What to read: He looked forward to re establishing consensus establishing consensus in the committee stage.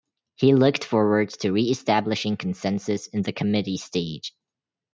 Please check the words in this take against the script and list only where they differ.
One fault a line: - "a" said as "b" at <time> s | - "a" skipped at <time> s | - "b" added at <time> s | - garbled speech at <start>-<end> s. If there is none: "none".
- "establishing consensus" skipped at 3.1 s